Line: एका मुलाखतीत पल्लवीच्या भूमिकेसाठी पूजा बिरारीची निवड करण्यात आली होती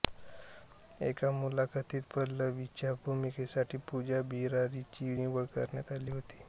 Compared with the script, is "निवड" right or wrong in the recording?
right